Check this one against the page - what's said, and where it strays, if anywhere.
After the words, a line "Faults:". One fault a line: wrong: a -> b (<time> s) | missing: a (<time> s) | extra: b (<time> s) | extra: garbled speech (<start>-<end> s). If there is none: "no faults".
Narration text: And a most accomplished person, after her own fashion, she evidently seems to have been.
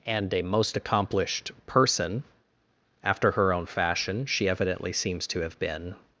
And a most accomplished person, after her own fashion, she evidently seems to have been.
Faults:
no faults